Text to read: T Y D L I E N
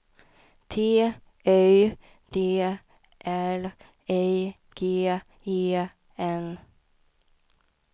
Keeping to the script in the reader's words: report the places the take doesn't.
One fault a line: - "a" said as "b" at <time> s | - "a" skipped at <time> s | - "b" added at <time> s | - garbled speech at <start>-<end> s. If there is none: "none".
- "G" added at 4.8 s